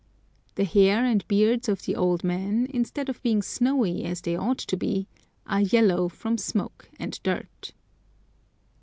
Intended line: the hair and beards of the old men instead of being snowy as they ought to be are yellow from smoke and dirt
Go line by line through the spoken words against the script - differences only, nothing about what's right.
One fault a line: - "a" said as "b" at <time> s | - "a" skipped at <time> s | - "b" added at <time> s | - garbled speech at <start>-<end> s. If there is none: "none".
none